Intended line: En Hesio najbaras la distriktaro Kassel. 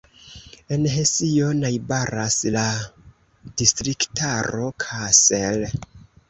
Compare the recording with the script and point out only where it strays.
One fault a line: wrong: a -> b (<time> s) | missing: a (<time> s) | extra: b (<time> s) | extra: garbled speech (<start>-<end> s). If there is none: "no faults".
no faults